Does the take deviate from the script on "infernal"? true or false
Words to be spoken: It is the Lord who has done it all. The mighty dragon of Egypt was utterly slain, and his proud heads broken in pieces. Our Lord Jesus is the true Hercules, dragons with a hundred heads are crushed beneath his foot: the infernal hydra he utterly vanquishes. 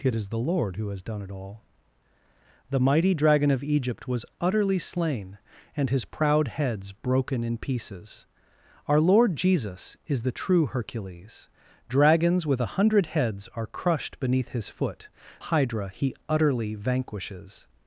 true